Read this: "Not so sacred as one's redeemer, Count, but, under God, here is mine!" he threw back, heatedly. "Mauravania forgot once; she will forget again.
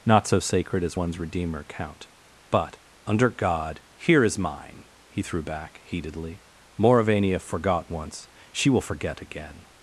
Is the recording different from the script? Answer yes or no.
no